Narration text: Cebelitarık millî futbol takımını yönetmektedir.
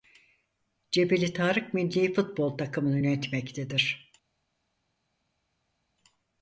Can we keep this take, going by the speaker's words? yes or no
yes